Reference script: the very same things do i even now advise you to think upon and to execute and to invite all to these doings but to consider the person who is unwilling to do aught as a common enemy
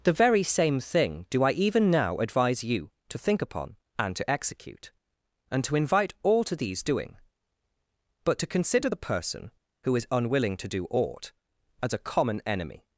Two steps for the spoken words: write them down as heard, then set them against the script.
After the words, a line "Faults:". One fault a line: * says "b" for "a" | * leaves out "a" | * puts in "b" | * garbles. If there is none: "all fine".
the very same thing do i even now advise you to think upon and to execute and to invite all to these doing but to consider the person who is unwilling to do aught as a common enemy
Faults:
* says "thing" for "things"
* says "doing" for "doings"